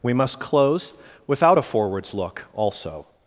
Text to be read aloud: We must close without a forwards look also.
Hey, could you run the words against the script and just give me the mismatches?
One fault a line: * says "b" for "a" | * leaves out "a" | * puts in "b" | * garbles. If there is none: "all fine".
all fine